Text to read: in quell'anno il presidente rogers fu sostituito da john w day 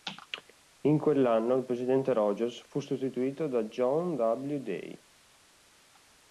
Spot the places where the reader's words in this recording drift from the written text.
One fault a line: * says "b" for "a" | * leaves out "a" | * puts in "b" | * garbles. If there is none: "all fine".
all fine